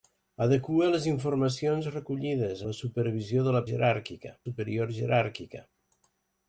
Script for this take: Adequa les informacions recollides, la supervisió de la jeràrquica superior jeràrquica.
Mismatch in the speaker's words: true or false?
false